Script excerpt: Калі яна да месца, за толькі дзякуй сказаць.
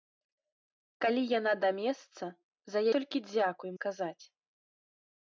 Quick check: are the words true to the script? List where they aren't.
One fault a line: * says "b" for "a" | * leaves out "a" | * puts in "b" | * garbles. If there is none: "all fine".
all fine